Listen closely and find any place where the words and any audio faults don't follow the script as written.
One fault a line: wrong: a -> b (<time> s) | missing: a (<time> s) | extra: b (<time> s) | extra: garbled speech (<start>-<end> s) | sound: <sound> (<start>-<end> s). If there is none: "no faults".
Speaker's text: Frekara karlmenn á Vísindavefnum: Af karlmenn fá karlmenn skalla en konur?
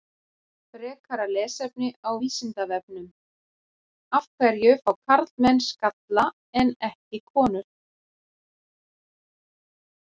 wrong: karlmenn -> lesefni (1.3 s)
wrong: karlmenn -> hverju (4.4 s)
extra: ekki (6.9 s)